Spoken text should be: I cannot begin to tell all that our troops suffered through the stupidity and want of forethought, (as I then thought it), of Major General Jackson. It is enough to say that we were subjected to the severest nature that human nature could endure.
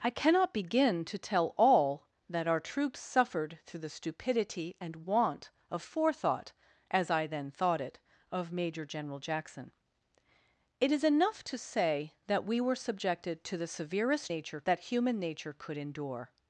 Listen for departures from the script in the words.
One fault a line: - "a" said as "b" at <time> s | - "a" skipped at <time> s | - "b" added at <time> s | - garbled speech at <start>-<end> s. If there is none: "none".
none